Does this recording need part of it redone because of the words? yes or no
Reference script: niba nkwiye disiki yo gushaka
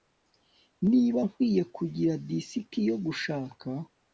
yes